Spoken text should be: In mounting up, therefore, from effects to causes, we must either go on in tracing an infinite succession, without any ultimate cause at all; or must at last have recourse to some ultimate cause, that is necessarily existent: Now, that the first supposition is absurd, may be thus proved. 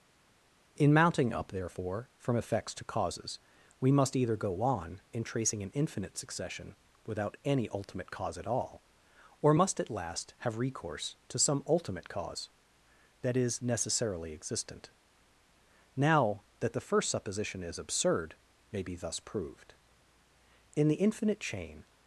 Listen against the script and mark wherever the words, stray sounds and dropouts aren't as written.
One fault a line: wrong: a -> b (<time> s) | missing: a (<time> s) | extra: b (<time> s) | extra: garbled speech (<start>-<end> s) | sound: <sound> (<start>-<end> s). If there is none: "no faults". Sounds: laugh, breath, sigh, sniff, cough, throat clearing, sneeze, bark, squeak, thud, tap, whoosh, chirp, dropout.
extra: In the infinite chain (20.7 s)